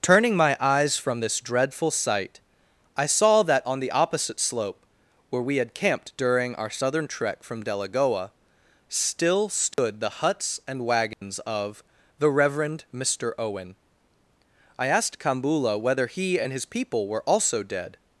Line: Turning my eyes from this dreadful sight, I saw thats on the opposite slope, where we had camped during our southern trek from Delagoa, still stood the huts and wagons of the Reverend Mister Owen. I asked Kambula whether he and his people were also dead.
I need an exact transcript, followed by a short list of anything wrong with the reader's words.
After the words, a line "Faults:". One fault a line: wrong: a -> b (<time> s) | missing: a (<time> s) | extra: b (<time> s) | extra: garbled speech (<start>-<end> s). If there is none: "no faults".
Turning my eyes from this dreadful sight, I saw that on the opposite slope, where we had camped during our southern trek from Delagoa, still stood the huts and wagons of the Reverend Mister Owen. I asked Kambula whether he and his people were also dead.
Faults:
wrong: thats -> that (3.4 s)